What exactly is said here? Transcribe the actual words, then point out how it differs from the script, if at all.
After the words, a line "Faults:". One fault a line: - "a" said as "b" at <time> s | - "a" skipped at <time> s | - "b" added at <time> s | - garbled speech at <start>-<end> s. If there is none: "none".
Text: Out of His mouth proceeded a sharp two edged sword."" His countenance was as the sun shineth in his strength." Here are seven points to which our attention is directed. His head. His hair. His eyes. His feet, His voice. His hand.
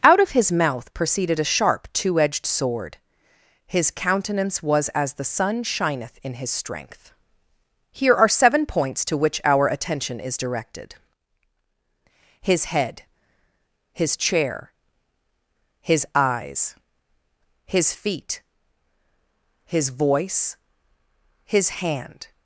Out of His mouth proceeded a sharp two edged sword."" His countenance was as the sun shineth in his strength." Here are seven points to which our attention is directed. His head. His chair. His eyes. His feet, His voice. His hand.
Faults:
- "hair" said as "chair" at 14.2 s